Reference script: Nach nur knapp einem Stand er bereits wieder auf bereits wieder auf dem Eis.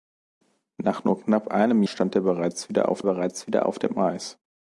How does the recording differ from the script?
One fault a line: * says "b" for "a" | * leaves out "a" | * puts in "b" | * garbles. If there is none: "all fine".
all fine